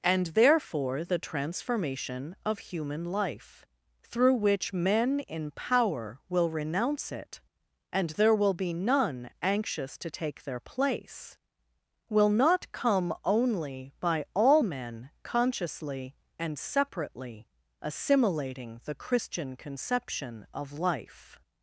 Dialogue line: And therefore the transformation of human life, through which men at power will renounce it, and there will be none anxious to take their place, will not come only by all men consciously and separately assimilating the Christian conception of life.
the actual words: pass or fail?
fail